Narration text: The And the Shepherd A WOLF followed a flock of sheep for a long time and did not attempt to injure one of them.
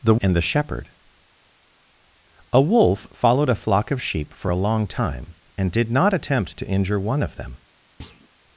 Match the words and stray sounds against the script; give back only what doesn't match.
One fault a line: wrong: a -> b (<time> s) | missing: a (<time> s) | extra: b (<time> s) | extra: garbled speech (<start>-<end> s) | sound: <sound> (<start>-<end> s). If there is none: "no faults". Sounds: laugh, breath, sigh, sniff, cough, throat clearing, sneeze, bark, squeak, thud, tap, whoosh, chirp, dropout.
sound: thud (8.0-8.3 s)